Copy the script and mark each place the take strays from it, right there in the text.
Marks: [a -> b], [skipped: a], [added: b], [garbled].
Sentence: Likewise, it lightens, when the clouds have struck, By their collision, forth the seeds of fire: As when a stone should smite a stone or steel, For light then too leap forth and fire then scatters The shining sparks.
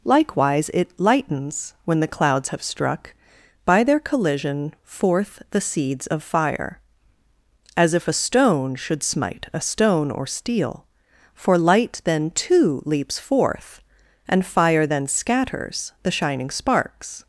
Likewise, it lightens, when the clouds have struck, By their collision, forth the seeds of fire: As [when -> if] a stone should smite a stone or steel, For light then too [leap -> leaps] forth and fire then scatters The shining sparks.